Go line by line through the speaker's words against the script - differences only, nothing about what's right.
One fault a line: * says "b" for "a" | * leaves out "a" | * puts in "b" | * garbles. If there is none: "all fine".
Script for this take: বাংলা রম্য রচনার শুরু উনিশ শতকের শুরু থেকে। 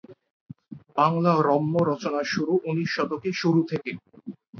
all fine